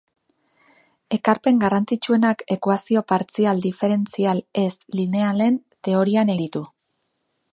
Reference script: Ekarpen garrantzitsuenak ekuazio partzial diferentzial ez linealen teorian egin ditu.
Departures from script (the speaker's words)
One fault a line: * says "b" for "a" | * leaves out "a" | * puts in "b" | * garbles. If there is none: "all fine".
* leaves out "egin"